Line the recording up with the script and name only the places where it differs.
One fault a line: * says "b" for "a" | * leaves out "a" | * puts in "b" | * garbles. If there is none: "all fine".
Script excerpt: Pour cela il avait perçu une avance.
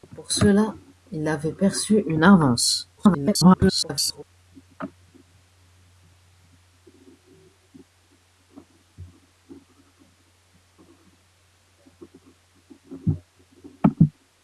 * garbles